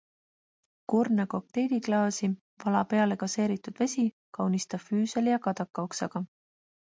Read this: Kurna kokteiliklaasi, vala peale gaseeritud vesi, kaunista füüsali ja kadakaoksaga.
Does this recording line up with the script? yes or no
yes